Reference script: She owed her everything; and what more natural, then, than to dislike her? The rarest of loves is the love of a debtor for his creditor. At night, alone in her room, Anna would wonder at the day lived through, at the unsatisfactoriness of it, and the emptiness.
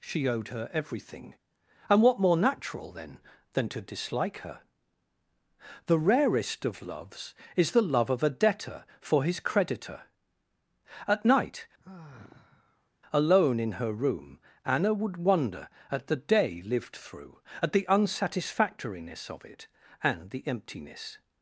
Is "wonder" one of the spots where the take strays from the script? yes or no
no